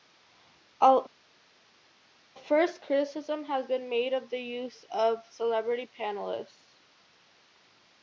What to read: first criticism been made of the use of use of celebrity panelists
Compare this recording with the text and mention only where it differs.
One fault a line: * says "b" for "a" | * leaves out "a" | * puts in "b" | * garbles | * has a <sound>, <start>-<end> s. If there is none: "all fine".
* puts in "has"
* leaves out "use of"